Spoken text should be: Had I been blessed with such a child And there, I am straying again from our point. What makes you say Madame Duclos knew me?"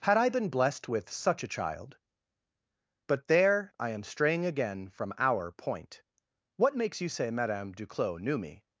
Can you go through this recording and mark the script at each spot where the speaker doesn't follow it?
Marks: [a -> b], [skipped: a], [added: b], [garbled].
Had I been blessed with such a child [And -> But] there, I am straying again from our point. What makes you say Madame Duclos knew me?"